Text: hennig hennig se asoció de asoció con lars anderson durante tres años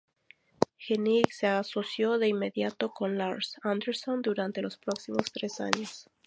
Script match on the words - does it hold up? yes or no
no